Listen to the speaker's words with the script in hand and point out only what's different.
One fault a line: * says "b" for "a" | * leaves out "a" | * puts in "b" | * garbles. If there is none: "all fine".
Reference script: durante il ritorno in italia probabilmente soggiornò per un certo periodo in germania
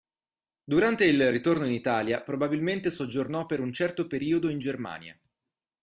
all fine